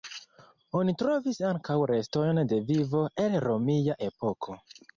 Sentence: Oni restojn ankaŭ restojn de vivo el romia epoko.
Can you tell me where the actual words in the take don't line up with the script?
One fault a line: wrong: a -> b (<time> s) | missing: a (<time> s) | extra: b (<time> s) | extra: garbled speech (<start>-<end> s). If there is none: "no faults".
wrong: restojn -> trovis (1.0 s)